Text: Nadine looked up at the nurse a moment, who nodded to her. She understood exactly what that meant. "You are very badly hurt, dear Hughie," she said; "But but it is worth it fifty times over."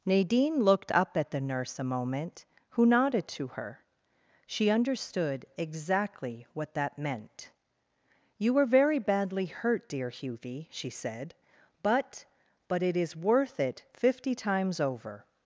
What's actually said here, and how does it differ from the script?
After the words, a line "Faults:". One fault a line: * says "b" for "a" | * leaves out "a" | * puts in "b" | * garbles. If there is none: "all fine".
Nadine looked up at the nurse a moment, who nodded to her. She understood exactly what that meant. "You were very badly hurt, dear Hughie," she said; "But but it is worth it fifty times over."
Faults:
* says "were" for "are"